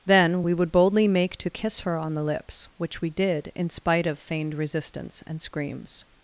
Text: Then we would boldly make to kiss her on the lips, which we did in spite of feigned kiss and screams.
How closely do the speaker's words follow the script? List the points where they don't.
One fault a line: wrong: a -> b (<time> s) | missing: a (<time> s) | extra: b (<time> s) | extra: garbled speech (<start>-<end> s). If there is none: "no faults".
wrong: kiss -> resistance (4.5 s)